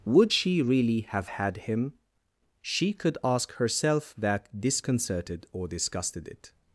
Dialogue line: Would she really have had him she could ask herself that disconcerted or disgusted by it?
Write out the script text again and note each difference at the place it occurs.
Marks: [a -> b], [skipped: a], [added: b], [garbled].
Would she really have had him she could ask herself that disconcerted or disgusted [skipped: by] it?